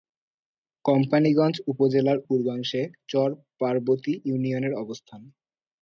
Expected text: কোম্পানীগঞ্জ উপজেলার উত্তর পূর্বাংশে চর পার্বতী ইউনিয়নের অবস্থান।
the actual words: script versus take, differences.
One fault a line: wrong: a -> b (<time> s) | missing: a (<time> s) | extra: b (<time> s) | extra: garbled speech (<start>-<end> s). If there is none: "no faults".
missing: উত্তর (2.2 s)